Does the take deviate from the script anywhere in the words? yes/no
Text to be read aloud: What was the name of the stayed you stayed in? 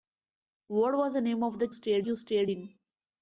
no